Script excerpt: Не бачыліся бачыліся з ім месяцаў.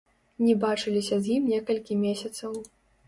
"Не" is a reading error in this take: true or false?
false